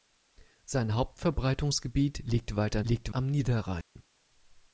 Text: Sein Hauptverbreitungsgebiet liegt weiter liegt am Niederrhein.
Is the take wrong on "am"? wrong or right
right